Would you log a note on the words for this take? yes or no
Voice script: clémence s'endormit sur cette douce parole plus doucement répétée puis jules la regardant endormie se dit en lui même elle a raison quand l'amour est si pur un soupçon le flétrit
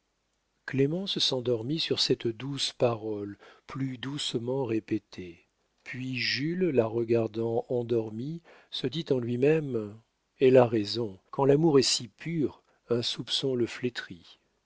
no